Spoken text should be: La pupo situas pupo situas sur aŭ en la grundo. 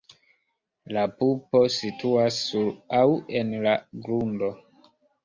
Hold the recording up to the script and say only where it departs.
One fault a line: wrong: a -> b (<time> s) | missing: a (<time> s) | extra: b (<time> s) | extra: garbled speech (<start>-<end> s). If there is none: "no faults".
missing: pupo situas (2.4 s)